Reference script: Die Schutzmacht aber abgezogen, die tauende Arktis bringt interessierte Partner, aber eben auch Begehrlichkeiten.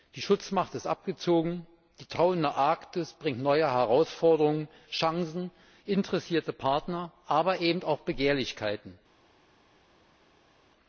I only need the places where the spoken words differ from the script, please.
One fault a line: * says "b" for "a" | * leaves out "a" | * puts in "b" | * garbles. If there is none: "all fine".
* says "ist" for "aber"
* puts in "neue Herausforderungen Chancen"